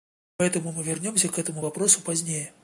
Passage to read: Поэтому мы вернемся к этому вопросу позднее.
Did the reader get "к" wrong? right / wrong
right